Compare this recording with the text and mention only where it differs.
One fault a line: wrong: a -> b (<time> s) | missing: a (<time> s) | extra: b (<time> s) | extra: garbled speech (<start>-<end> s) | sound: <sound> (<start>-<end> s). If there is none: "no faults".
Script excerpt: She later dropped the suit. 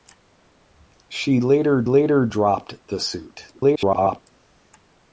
extra: later (1.8 s)
extra: garbled speech (3.5-4.2 s)